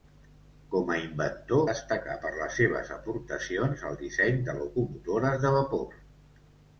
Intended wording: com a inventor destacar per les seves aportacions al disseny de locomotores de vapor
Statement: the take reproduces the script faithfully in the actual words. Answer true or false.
true